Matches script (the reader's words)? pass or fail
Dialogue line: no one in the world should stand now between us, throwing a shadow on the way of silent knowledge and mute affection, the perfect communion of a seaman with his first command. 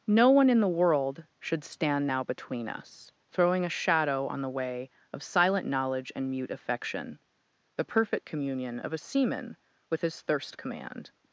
fail